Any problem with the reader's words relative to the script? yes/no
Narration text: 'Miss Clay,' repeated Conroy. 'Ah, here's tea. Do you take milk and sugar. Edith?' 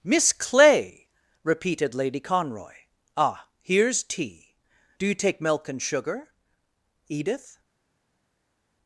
yes